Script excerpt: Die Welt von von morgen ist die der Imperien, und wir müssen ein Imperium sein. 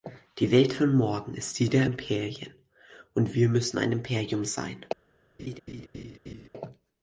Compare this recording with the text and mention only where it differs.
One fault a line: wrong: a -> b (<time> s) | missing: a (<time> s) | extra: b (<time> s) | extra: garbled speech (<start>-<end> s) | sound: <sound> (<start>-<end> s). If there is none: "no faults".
missing: von (0.9 s)
sound: laugh (5.4-6.5 s)